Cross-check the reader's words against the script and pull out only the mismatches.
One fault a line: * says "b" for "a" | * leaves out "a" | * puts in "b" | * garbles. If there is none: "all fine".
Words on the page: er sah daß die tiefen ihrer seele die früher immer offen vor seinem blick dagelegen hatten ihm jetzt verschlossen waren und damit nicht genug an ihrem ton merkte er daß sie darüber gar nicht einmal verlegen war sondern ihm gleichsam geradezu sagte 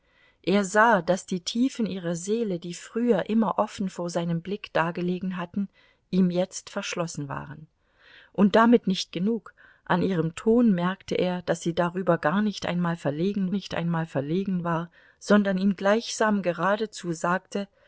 * puts in "nicht einmal verlegen"